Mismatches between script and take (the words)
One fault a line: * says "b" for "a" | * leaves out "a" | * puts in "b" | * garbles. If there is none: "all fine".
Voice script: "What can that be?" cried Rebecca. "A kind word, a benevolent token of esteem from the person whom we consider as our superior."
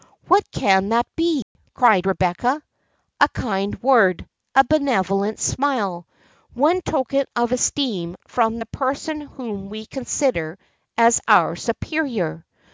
* puts in "smile one"